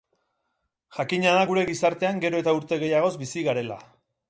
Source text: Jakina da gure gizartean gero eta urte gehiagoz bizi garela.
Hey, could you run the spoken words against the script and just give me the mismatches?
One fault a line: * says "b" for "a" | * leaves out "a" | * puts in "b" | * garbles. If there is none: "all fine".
all fine